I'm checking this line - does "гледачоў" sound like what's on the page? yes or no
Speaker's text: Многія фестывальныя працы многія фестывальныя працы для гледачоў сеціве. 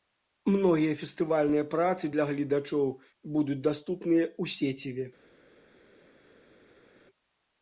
no